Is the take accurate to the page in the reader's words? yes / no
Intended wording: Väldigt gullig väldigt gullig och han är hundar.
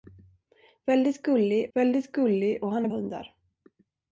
yes